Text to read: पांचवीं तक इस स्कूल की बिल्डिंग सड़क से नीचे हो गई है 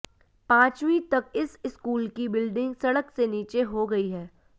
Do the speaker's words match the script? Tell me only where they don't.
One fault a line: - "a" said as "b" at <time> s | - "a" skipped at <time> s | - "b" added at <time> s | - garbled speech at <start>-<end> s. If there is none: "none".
none